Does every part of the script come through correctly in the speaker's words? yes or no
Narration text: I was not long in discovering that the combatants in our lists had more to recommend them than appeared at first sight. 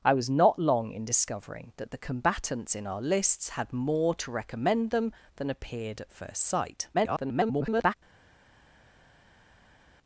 no